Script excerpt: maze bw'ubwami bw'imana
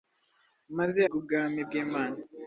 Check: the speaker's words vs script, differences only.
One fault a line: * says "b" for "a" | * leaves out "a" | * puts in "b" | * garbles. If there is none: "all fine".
all fine